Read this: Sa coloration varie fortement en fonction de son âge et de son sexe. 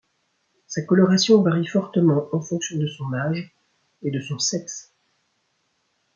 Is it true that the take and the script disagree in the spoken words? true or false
false